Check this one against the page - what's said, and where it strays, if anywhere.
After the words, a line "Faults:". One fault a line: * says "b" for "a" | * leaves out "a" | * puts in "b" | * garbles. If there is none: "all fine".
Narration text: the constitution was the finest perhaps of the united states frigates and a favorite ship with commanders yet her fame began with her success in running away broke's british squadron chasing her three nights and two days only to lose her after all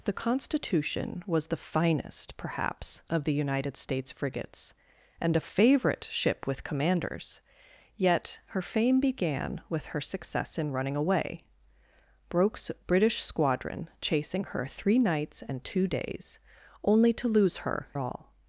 the constitution was the finest perhaps of the united states frigates and a favorite ship with commanders yet her fame began with her success in running away broke's british squadron chasing her three nights and two days only to lose her all
Faults:
* leaves out "after"